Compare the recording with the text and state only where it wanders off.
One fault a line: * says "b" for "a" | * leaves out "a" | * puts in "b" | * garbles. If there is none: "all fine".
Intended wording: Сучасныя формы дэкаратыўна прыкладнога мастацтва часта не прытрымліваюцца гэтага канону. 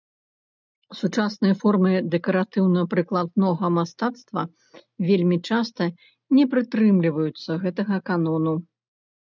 * puts in "вельмі"